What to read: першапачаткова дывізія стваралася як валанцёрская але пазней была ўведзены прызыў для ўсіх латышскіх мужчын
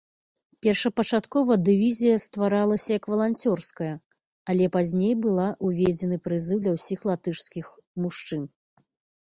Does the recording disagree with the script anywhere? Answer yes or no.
no